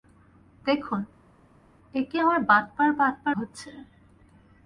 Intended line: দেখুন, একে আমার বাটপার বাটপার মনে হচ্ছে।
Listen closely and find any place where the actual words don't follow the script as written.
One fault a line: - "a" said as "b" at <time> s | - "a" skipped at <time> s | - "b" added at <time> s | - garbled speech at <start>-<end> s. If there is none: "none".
- "মনে" skipped at 3.3 s